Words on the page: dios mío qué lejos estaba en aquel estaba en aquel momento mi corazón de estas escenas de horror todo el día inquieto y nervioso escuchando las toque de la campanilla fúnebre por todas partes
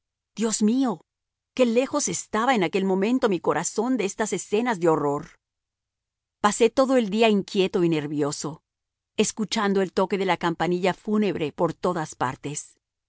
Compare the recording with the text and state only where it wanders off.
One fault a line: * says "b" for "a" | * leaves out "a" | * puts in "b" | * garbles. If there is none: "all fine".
* leaves out "estaba en aquel"
* puts in "pasé"
* says "el" for "las"